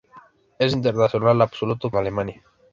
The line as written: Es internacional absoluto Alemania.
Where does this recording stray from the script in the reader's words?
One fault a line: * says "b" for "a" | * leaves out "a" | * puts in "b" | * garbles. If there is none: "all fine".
all fine